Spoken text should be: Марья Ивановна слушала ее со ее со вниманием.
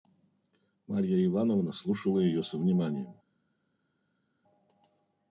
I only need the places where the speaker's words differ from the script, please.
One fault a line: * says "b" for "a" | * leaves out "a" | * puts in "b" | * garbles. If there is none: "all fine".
* leaves out "ее со"